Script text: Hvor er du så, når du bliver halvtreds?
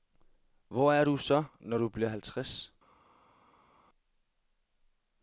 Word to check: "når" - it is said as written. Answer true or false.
true